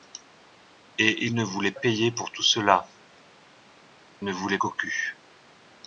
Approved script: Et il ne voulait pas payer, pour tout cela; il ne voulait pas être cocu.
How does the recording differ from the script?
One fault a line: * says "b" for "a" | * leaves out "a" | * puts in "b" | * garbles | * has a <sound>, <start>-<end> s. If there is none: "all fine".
* leaves out "pas"
* leaves out "il"
* leaves out "pas être"